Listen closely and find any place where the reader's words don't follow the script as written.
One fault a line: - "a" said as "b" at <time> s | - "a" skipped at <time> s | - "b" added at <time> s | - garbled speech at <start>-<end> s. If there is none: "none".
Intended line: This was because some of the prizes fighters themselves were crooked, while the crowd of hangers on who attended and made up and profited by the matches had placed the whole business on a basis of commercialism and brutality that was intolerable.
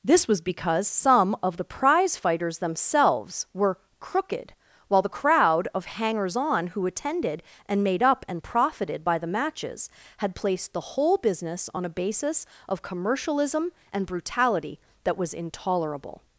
- "prizes" said as "prize" at 1.6 s